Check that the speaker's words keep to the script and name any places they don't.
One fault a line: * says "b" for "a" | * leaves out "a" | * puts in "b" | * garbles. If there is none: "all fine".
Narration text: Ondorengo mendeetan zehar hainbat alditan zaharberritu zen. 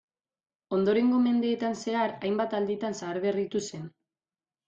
all fine